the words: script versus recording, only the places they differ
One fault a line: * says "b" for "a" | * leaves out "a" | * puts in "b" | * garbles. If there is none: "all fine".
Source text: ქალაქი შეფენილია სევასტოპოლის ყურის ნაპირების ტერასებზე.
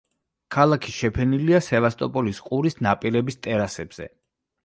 all fine